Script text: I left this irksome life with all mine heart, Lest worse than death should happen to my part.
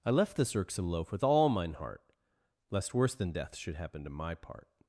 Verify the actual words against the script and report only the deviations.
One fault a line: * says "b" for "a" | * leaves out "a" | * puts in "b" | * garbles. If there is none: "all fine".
* says "loaf" for "life"